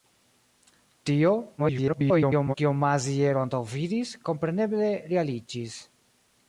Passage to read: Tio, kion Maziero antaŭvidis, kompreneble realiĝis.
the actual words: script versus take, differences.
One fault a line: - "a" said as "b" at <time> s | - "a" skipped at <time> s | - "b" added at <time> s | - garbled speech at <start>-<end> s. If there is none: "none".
- garbled speech at 1.6-2.5 s